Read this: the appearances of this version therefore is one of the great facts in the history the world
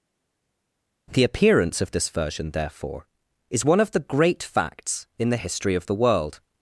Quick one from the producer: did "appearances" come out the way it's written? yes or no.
no